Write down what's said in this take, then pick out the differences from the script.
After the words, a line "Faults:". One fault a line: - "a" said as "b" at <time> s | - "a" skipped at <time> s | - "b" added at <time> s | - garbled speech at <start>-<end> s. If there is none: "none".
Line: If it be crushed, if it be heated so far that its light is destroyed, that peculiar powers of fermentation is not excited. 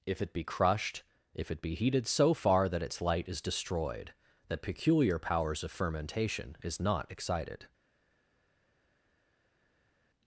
If it be crushed, if it be heated so far that its light is destroyed, that peculiar powers of fermentation is not excited.
Faults:
none